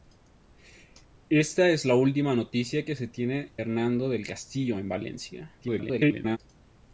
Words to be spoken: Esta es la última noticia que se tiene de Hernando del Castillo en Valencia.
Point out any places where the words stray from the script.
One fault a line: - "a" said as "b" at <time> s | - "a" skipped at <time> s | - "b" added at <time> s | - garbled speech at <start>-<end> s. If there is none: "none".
- "de" skipped at 3.6 s
- garbled speech at 5.6-6.4 s